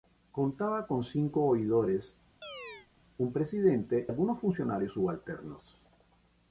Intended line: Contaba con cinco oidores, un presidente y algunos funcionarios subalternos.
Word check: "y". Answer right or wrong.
wrong